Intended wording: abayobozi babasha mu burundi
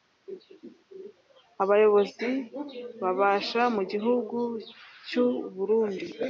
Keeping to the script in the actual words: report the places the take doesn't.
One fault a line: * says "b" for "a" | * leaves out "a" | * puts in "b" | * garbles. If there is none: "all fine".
* puts in "gihugu cy'u"